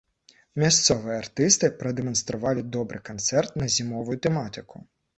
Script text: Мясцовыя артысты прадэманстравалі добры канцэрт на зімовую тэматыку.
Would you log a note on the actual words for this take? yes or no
no